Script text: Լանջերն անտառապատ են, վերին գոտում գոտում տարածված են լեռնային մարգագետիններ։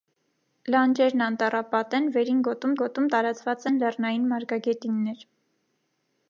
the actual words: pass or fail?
pass